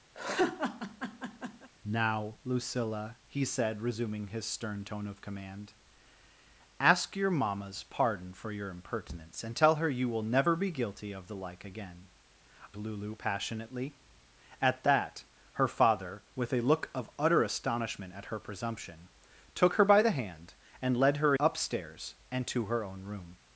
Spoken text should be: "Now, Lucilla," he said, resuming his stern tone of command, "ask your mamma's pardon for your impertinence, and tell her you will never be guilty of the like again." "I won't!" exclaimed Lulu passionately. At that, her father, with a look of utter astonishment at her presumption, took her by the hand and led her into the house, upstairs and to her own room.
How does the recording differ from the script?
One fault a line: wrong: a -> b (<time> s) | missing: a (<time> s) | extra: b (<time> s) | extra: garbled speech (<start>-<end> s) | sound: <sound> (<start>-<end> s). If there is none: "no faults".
sound: laugh (0.1-1.7 s)
missing: I won't exclaimed (12.1 s)
missing: into the house (21.3 s)